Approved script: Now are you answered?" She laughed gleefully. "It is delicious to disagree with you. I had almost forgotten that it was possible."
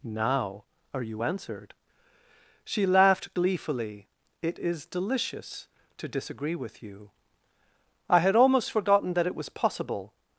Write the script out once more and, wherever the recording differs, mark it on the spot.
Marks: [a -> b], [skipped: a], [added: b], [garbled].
Now are you answered?" She laughed gleefully. "It is delicious to disagree with you. I had almost forgotten that it was possible."